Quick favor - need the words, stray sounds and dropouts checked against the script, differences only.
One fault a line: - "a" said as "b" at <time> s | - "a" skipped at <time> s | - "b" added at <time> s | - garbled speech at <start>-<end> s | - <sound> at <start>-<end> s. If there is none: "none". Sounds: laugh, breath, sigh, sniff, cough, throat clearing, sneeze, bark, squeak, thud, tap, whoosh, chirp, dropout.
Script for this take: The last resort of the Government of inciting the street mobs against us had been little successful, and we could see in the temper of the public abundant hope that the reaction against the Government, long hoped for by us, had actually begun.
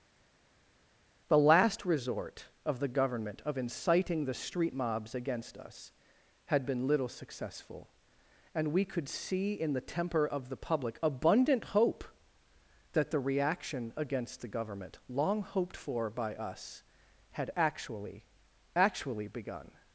- "actually" added at 18.7 s